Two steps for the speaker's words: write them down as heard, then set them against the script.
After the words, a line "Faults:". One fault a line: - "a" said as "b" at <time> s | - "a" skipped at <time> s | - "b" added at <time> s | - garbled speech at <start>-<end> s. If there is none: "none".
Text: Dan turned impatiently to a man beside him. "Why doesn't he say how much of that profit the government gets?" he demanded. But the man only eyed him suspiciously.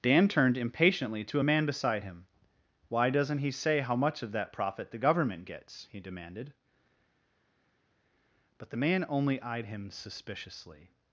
Dan turned impatiently to a man beside him. "Why doesn't he say how much of that profit the government gets?" he demanded. But the man only eyed him suspiciously.
Faults:
none